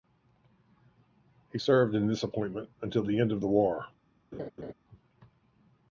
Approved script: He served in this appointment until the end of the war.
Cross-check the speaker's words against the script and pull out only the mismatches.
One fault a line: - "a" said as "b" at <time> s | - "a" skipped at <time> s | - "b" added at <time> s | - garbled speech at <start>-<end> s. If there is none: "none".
none